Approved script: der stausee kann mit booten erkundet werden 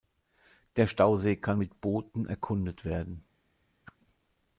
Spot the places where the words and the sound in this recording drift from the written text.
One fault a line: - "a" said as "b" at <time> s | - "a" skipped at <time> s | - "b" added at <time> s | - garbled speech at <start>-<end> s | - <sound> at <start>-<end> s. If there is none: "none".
- whoosh at 3.8-4.0 s